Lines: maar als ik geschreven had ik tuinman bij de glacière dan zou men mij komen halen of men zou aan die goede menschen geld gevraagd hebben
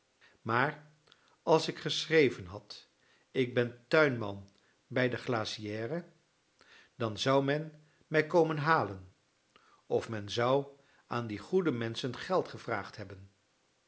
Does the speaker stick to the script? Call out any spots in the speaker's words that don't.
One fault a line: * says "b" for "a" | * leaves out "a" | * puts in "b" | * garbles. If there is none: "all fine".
* puts in "ben"